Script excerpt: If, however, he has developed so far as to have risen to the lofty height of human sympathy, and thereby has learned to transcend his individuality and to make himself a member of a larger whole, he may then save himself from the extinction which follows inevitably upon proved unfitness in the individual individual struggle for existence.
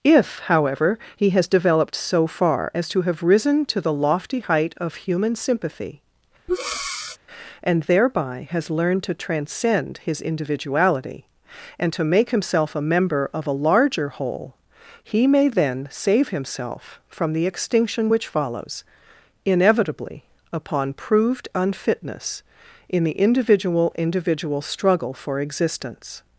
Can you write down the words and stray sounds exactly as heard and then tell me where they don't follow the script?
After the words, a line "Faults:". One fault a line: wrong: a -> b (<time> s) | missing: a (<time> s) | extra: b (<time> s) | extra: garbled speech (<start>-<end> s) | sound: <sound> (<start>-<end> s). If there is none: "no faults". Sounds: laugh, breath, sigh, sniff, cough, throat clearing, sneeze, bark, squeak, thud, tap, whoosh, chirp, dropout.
If, however, he has developed so far as to have risen to the lofty height of human sympathy, and thereby has learned to transcend his individuality and to make himself a member of a larger whole, he may then save himself from the extinction which follows inevitably upon proved unfitness in the individual individual struggle for existence.
Faults:
sound: breath (6.5-7.2 s)